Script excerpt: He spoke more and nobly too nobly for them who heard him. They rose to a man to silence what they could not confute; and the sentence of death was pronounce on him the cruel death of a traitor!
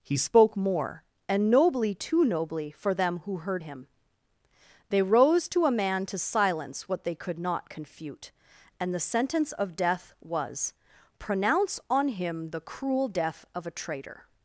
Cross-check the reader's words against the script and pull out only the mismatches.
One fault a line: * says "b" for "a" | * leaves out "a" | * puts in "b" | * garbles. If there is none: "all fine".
all fine